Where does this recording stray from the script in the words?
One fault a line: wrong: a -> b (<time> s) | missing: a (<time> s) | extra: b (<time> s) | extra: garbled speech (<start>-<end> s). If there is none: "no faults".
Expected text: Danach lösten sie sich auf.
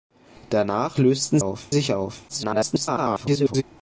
wrong: sie -> auf (1.4 s)
extra: garbled speech (2.3-3.6 s)